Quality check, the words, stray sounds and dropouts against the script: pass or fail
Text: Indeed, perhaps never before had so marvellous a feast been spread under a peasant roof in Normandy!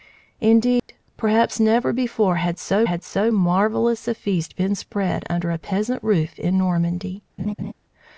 fail